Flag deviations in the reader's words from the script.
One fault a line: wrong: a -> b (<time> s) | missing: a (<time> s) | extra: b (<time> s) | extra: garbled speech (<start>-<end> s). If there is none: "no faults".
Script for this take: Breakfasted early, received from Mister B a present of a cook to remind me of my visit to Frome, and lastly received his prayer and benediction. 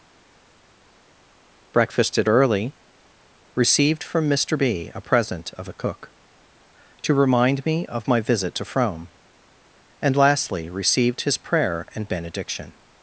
no faults